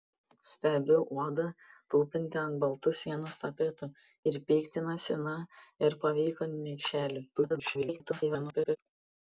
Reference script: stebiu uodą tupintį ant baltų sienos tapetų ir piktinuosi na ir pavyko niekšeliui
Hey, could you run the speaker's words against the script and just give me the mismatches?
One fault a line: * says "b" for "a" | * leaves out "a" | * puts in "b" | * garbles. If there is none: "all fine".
* garbles